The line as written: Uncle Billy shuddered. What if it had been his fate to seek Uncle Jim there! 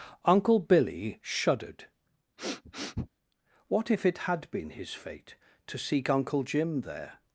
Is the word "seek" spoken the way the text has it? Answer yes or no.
yes